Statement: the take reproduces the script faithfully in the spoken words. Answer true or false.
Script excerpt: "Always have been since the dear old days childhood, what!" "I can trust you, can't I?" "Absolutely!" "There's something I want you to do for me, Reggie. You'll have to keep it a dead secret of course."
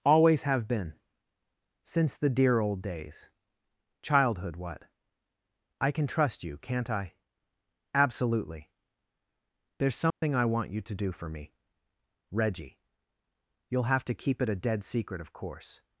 true